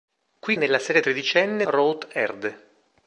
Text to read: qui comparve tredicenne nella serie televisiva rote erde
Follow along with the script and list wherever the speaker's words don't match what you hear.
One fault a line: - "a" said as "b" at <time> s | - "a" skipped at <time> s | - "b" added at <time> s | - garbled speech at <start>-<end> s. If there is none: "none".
- "comparve tredicenne" skipped at 0.6 s
- "televisiva" said as "tredicenne" at 1.0 s